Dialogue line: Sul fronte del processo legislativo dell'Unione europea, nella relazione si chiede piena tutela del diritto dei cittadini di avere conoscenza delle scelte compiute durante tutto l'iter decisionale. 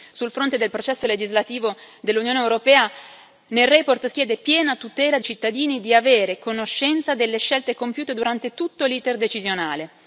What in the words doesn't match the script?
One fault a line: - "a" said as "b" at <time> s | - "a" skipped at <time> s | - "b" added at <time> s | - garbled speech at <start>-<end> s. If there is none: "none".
- "si" skipped at 4.1 s
- "del diritto dei" skipped at 5.2 s